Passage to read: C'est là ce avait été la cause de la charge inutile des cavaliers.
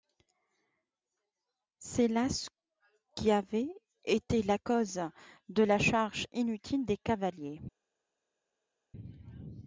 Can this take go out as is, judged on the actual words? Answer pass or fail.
fail